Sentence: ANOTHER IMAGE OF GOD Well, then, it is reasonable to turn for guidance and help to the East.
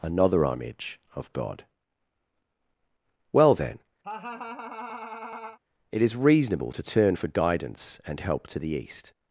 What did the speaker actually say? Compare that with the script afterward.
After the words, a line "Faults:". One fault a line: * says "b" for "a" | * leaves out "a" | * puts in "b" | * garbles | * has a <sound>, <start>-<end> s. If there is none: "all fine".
ANOTHER IMAGE OF GOD Well, then, it is reasonable to turn for guidance and help to the East.
Faults:
* has a laugh, 4.0-5.6 s